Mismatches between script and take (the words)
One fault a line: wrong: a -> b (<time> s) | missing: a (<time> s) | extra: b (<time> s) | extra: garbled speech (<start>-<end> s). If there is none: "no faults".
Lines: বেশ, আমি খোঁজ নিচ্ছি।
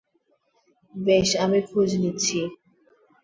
no faults